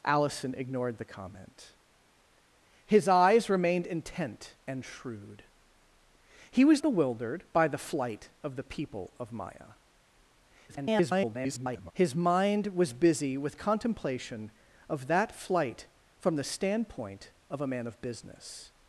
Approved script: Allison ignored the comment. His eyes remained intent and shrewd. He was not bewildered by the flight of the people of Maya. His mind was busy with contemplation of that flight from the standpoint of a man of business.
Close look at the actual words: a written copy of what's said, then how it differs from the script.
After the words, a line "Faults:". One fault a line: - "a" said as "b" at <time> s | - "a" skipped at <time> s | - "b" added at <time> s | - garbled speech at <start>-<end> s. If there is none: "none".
Allison ignored the comment. His eyes remained intent and shrewd. He was bewildered by the flight of the people of Maya. [garbled] His mind was busy with contemplation of that flight from the standpoint of a man of business.
Faults:
- "not" skipped at 6.8 s
- garbled speech at 10.7-11.9 s